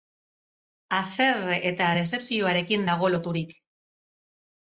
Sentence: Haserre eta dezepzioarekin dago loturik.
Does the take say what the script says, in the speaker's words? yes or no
yes